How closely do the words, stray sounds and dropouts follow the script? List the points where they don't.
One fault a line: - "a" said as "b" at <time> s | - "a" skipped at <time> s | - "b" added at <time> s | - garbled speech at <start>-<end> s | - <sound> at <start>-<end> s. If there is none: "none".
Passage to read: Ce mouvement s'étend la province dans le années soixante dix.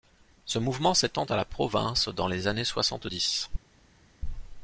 - "à" added at 1.2 s
- "le" said as "les" at 2.3 s